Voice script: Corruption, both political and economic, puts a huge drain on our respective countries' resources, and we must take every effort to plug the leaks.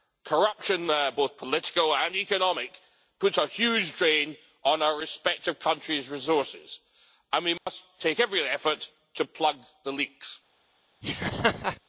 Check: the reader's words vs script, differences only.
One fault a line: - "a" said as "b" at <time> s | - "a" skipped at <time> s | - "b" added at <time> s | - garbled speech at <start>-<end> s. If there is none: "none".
none